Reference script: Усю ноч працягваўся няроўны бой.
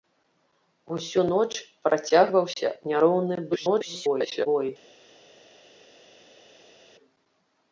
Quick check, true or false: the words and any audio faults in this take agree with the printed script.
false